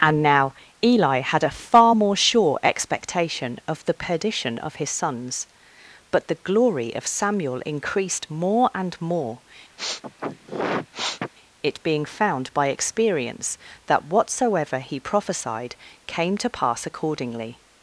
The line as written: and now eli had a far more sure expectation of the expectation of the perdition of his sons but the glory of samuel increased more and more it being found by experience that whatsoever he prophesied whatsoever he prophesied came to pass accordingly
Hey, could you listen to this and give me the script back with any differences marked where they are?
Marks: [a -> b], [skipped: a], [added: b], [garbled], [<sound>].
and now eli had a far more sure expectation of the [skipped: expectation of the] perdition of his sons but the glory of samuel increased more and more [sniff] it being found by experience that whatsoever he prophesied [skipped: whatsoever he prophesied] came to pass accordingly